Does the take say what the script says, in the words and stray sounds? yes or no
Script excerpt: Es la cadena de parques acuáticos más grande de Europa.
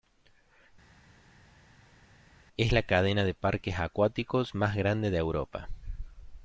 yes